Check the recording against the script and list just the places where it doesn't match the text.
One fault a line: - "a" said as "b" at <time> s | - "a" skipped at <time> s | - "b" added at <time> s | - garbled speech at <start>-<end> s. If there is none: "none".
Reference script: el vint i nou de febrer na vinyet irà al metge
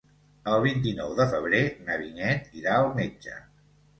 none